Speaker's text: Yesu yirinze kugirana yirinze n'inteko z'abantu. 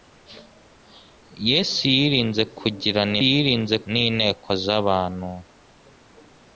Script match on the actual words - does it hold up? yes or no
yes